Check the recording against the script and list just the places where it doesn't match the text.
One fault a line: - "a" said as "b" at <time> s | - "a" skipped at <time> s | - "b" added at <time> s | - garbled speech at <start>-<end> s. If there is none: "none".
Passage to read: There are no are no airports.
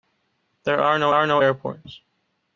none